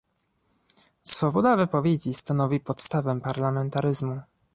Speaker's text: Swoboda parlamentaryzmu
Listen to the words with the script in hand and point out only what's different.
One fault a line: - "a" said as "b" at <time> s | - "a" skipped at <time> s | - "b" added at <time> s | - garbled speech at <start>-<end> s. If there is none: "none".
- "wypowiedzi stanowi podstawę" added at 1.6 s